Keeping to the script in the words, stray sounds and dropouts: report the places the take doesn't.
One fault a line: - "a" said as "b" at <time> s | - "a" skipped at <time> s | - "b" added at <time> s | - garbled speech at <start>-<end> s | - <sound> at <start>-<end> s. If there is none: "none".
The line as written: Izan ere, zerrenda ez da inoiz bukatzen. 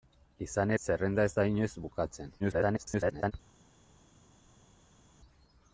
- "ere" skipped at 0.7 s
- garbled speech at 2.4-3.3 s